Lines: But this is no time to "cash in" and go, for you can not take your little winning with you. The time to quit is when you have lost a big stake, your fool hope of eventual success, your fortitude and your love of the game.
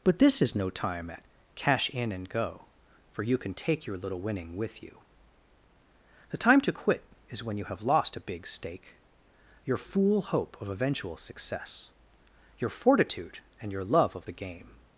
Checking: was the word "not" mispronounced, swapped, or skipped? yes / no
yes